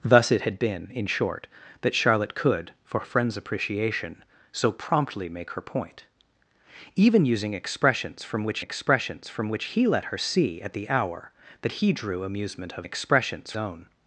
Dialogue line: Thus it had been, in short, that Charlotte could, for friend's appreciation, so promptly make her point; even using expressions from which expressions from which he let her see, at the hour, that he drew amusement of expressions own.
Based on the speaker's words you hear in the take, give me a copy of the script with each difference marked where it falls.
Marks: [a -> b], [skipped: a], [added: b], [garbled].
Thus it had been, in short, that Charlotte could, for friend's appreciation, so promptly make her point; even using expressions from which expressions from which he let her see, at the hour, that he drew amusement of expressions own.